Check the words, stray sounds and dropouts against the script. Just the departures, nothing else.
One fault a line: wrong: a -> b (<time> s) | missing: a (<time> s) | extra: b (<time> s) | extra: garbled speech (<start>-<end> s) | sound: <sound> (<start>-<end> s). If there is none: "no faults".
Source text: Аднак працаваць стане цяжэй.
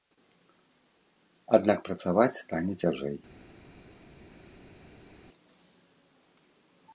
no faults